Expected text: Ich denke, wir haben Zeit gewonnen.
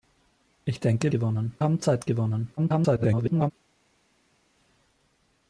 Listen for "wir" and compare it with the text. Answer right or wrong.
wrong